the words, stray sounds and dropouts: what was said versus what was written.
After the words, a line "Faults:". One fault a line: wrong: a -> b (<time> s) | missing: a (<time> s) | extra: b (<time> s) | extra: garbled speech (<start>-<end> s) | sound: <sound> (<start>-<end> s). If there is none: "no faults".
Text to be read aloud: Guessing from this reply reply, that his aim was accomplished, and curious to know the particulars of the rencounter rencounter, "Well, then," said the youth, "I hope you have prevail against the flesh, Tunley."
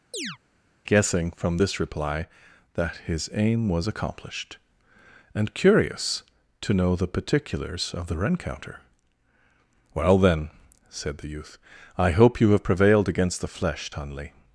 Guessing from this reply, that his aim was accomplished, and curious to know the particulars of the rencounter, "Well, then," said the youth, "I hope you have prevailed against the flesh, Tunley."
Faults:
sound: chirp (0.1-0.4 s)
missing: reply (2.3 s)
missing: rencounter (8.8 s)
wrong: prevail -> prevailed (12.6 s)